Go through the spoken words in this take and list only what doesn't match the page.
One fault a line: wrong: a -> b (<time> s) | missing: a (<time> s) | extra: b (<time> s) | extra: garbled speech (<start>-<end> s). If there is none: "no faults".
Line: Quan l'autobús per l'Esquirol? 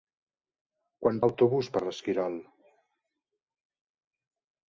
no faults